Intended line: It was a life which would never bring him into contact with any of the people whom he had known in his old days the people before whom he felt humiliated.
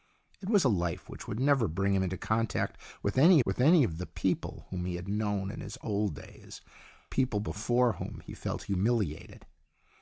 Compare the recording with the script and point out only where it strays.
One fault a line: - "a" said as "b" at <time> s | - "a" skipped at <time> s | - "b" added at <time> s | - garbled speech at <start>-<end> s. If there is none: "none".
- "with any" added at 3.4 s
- "the" skipped at 6.6 s